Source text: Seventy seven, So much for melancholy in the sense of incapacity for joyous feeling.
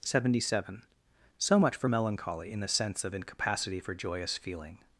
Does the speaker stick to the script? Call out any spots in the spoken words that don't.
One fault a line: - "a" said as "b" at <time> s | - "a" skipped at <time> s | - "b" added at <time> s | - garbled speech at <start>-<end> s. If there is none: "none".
none